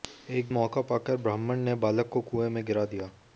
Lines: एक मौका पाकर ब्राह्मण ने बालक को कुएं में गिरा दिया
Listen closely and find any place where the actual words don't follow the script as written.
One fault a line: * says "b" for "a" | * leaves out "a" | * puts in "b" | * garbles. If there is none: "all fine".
all fine